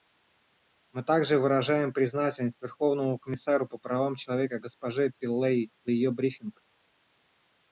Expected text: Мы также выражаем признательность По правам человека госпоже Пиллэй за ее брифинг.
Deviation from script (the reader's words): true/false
true